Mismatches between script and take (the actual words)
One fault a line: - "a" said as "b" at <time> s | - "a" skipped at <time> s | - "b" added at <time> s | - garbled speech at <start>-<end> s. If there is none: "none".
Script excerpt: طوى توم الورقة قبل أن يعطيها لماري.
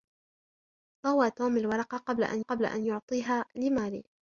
- "قبل أن" added at 2.4 s